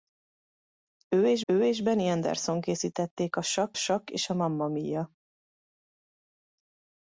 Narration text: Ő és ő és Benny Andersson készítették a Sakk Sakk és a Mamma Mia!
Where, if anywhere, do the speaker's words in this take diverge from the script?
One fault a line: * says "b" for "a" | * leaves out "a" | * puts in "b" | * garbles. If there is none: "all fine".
all fine